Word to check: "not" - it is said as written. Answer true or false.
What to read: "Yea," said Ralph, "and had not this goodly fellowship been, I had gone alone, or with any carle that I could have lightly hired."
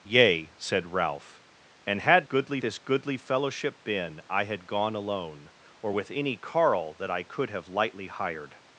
false